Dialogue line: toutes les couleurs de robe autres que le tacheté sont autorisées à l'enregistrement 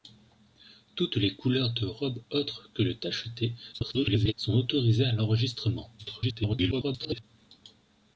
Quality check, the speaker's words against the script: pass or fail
fail